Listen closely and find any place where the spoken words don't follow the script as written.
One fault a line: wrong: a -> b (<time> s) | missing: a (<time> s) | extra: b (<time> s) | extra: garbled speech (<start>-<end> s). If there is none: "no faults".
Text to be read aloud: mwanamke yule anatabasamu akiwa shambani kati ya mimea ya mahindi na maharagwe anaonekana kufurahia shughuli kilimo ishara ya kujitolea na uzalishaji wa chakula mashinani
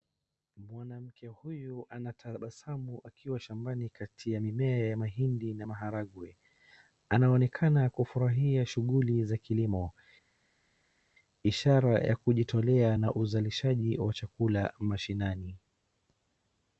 wrong: yule -> huyu (1.3 s)
extra: za (9.2 s)